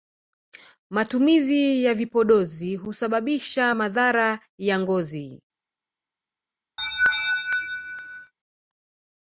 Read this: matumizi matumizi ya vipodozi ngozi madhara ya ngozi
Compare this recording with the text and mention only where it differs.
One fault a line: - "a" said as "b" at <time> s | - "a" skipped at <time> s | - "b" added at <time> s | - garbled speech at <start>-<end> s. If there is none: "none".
- "matumizi" skipped at 1.8 s
- "ngozi" said as "husababisha" at 2.8 s